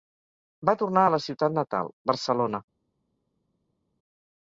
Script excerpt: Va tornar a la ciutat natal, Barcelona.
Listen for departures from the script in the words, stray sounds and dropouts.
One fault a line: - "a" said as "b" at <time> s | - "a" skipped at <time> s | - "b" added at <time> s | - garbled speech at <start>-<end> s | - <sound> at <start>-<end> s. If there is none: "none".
none